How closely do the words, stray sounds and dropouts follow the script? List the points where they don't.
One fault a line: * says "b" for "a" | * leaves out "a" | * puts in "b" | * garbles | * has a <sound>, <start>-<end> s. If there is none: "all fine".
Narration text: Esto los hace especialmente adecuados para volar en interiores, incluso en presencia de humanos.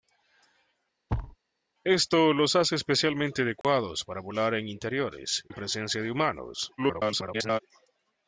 * has a thud, 1.1-1.4 s
* has a dropout, 3.6-3.6 s
* leaves out "incluso"
* garbles